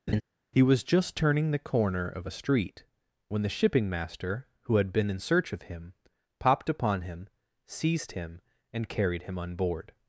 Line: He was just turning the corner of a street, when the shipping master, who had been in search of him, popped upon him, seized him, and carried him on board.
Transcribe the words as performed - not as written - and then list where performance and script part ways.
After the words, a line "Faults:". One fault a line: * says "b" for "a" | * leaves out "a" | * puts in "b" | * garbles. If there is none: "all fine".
He was just turning the corner of a street, when the shipping master, who had been in search of him, popped upon him, seized him, and carried him on board.
Faults:
all fine